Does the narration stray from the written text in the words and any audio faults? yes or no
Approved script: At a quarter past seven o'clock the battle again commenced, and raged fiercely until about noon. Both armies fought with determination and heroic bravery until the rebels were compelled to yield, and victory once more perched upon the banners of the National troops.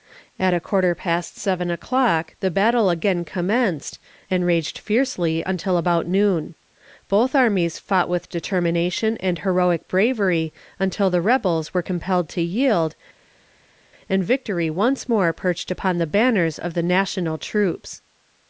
no